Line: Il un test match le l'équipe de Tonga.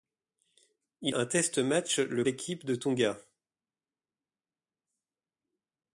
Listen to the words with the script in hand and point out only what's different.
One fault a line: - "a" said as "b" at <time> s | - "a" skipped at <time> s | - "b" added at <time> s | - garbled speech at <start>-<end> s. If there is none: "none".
none